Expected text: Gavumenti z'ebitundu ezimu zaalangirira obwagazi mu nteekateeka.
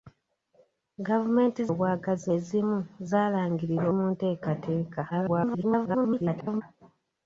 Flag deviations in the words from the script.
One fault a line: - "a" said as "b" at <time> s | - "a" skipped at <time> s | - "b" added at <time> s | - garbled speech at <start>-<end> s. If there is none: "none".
- "z'ebitundu" said as "obwagazi" at 1.7 s
- "obwagazi" skipped at 3.8 s
- garbled speech at 5.1-6.6 s